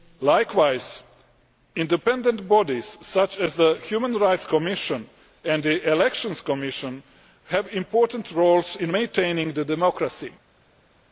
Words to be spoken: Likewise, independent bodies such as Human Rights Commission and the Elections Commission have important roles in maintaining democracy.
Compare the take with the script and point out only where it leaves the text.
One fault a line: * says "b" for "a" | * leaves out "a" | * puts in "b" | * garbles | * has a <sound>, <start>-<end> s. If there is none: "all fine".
* puts in "the"